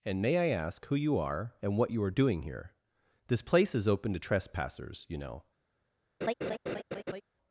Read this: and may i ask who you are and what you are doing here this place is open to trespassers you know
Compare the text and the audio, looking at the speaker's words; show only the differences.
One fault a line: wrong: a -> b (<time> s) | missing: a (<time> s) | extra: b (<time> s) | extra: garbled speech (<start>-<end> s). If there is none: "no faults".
no faults